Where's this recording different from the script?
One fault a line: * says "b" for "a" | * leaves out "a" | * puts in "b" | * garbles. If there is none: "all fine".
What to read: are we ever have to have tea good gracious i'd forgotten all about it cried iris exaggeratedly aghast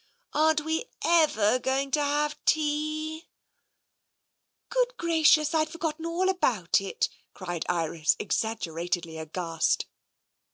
* says "aren't" for "are"
* says "going" for "have"